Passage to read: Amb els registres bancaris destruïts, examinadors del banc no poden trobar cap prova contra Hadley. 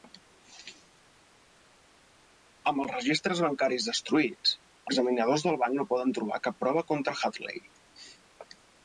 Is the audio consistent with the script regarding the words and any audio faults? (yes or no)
yes